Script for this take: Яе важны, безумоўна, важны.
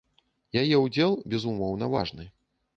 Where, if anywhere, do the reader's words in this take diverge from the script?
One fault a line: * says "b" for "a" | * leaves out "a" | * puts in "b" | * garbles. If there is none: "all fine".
* says "ўдзел" for "важны"